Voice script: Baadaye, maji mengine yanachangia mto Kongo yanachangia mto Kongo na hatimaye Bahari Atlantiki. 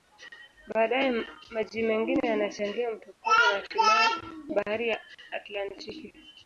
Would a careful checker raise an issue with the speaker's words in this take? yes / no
yes